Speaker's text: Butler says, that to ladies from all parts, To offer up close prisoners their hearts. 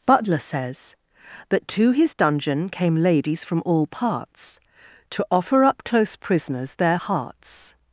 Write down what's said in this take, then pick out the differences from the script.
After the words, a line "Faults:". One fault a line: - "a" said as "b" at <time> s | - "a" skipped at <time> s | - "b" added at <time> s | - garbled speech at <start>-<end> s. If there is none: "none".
Butler says, that to his dungeon "Came ladies from all parts, To offer up close prisoners their hearts.
Faults:
- "his dungeon Came" added at 1.9 s